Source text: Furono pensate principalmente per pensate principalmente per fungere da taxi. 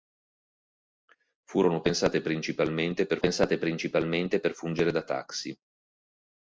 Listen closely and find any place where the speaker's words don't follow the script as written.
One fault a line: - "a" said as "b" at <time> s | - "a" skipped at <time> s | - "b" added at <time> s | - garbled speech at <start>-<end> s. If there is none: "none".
none